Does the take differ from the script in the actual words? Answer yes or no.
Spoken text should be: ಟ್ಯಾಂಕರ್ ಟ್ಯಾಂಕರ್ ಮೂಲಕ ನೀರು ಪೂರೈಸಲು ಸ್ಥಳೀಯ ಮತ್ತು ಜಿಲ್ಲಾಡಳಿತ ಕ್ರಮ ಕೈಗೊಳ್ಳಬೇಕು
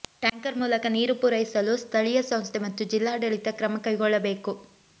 yes